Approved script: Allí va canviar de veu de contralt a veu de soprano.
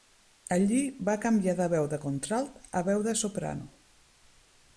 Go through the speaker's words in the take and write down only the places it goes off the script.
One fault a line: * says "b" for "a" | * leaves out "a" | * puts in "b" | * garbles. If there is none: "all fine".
all fine